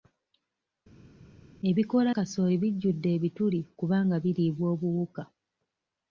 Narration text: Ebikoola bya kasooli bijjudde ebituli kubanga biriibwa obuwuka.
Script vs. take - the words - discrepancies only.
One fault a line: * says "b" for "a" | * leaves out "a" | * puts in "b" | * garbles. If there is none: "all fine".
* leaves out "bya"